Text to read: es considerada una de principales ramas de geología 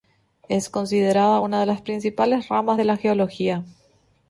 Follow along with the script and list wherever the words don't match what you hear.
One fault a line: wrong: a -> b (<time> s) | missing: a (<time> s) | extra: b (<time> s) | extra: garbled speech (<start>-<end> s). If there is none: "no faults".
extra: las (1.7 s)
extra: la (2.8 s)